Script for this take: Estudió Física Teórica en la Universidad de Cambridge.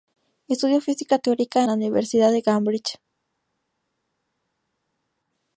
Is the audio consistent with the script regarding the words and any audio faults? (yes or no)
no